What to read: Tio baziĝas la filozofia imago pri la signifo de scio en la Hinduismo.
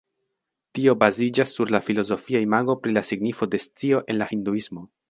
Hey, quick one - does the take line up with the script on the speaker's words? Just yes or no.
no